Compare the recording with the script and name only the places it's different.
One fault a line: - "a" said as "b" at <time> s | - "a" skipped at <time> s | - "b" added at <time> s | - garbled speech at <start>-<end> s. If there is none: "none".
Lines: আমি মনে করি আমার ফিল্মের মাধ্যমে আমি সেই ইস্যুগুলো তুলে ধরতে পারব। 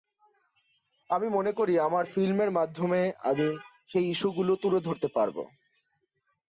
none